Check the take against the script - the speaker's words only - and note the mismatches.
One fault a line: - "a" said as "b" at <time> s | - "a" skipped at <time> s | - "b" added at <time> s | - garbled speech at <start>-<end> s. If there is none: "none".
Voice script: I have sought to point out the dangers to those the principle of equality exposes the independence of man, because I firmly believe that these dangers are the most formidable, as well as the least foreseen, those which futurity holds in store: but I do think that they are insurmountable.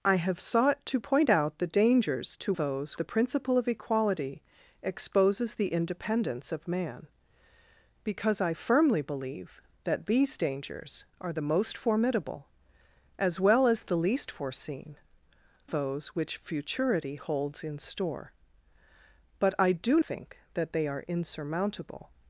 none